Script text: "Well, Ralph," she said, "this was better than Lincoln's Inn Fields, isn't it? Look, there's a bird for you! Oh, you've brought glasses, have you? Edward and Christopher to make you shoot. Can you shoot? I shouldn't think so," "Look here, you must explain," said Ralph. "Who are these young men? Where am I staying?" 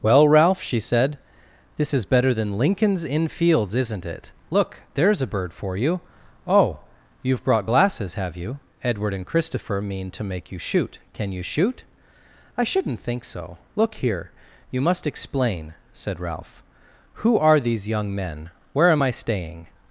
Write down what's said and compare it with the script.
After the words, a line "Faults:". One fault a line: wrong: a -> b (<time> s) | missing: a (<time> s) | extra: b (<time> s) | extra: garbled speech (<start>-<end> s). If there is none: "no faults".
"Well, Ralph," she said, "this is better than Lincoln's Inn Fields, isn't it? Look, there's a bird for you! Oh, you've brought glasses, have you? Edward and Christopher mean to make you shoot. Can you shoot? I shouldn't think so," "Look here, you must explain," said Ralph. "Who are these young men? Where am I staying?"
Faults:
wrong: was -> is (1.9 s)
extra: mean (9.8 s)